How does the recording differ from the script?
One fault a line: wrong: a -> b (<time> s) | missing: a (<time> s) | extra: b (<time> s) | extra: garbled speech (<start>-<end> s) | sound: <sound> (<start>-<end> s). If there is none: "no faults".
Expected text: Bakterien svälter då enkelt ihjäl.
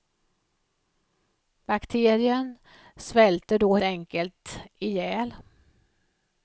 no faults